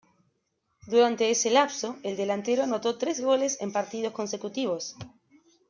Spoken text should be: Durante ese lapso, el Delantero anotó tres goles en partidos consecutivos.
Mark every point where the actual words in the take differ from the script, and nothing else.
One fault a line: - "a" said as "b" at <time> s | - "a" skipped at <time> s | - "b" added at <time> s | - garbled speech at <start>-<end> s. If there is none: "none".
none